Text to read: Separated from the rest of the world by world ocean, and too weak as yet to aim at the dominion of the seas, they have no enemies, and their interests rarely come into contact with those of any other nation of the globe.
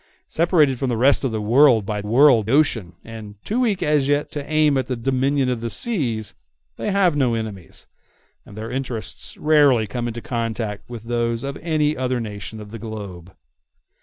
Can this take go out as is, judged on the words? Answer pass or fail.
pass